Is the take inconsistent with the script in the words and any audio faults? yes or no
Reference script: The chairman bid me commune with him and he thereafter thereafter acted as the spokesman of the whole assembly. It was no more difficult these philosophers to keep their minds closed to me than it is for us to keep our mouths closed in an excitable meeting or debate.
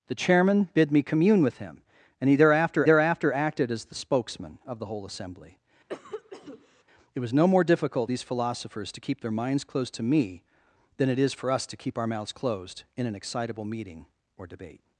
yes